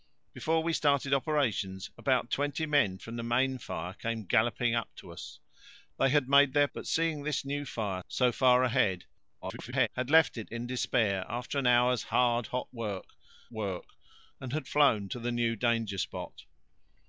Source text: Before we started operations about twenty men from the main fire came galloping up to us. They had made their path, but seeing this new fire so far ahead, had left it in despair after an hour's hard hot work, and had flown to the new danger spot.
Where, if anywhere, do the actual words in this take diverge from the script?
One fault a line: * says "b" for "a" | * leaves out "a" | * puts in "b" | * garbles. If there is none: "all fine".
* leaves out "path"
* garbles
* puts in "work"